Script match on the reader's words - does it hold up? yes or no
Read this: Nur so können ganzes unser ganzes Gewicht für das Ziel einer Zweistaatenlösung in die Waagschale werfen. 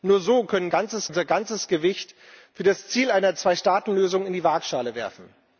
yes